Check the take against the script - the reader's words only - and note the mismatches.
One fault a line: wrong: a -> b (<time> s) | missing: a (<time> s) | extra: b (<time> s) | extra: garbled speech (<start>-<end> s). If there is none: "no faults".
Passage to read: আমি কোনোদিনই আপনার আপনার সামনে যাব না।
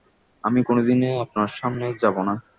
missing: আপনার (1.5 s)